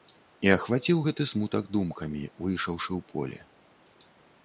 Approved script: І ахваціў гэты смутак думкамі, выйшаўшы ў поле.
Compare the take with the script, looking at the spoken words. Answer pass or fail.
pass